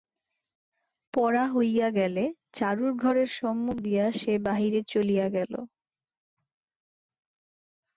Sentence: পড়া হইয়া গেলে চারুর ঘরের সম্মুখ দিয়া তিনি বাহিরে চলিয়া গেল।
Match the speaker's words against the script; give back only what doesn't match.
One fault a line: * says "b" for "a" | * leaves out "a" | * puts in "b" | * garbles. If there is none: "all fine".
* says "সে" for "তিনি"